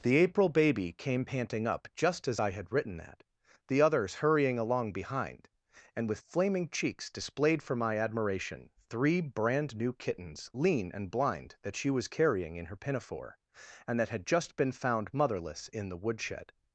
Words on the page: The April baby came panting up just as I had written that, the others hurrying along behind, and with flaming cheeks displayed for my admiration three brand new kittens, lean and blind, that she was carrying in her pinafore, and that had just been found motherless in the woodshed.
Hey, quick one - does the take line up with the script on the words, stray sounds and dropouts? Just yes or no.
yes